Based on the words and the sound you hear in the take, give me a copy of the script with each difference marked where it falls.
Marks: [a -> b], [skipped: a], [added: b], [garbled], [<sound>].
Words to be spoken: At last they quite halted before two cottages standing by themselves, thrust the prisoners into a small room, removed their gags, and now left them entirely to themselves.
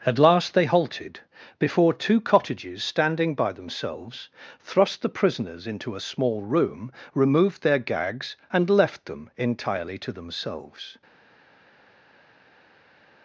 At last they [skipped: quite] halted before two cottages standing by themselves, thrust the prisoners into a small room, removed their gags, and [skipped: now] left them entirely to themselves.